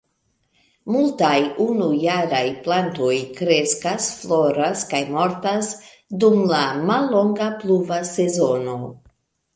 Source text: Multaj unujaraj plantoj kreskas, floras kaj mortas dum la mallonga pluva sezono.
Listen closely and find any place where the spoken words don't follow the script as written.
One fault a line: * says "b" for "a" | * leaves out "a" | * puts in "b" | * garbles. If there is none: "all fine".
all fine